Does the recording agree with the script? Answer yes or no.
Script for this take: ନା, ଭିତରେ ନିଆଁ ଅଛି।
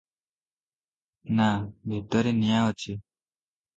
yes